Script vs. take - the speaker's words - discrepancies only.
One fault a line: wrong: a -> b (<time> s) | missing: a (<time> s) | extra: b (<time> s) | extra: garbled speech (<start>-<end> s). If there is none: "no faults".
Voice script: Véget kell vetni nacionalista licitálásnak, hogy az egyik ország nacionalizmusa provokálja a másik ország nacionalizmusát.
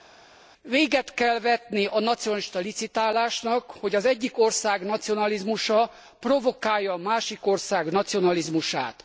extra: a (1.9 s)